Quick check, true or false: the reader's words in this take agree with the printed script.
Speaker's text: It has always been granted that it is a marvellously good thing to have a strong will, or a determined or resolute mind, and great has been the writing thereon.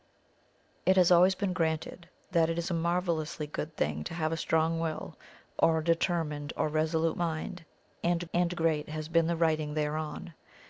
false